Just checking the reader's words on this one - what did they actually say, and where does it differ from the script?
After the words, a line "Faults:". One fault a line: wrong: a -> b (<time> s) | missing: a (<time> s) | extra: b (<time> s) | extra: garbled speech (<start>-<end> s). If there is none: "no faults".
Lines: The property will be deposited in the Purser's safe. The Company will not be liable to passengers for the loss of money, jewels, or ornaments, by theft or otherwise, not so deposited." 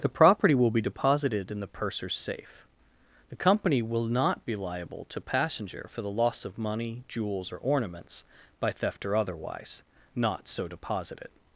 The property will be deposited in the Purser's safe. The Company will not be liable to passenger for the loss of money, jewels, or ornaments, by theft or otherwise, not so deposited."
Faults:
wrong: passengers -> passenger (5.2 s)